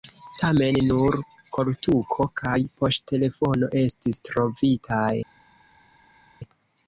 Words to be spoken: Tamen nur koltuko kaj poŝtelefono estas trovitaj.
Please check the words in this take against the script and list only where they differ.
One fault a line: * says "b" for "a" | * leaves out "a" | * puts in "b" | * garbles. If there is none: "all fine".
* says "estis" for "estas"